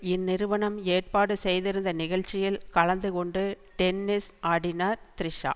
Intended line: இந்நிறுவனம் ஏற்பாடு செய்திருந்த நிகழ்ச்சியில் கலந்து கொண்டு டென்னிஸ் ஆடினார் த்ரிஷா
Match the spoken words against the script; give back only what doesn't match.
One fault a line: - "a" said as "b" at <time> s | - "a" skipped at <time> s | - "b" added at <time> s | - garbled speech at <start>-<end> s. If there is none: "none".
none